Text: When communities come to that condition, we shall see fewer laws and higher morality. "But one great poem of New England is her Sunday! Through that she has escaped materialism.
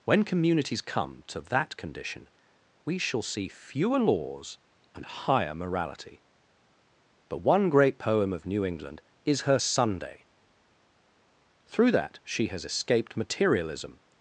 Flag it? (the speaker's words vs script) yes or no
no